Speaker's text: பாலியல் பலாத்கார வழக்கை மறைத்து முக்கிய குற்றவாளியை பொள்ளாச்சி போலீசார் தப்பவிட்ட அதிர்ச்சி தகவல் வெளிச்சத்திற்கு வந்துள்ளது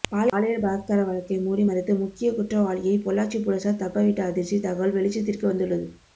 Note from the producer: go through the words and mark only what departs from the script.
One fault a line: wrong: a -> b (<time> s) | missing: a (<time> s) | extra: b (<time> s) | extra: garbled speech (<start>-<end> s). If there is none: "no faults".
extra: மூடி (1.4 s)